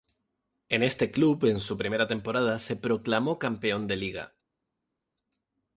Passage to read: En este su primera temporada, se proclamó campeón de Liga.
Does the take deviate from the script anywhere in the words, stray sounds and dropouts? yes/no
yes